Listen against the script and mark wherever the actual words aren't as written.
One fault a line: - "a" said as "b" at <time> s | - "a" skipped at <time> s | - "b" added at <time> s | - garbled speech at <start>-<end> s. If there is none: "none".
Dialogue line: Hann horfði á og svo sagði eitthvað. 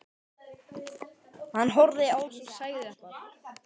none